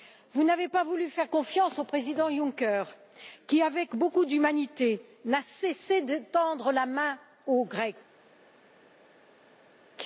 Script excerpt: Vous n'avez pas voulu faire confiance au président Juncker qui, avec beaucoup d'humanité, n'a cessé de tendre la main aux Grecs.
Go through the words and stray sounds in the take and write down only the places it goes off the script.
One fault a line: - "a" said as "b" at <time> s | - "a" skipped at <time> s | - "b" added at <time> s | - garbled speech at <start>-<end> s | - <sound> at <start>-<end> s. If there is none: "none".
none